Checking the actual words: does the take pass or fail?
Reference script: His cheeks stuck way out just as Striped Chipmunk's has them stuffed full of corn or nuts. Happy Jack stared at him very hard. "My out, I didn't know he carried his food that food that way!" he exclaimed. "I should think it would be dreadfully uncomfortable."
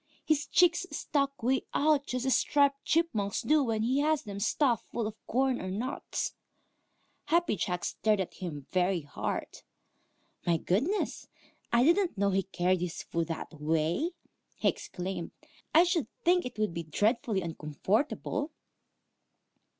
fail